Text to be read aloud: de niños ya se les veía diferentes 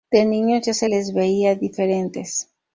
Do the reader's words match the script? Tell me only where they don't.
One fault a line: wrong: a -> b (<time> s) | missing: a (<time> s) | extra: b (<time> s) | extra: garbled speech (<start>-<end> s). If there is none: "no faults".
no faults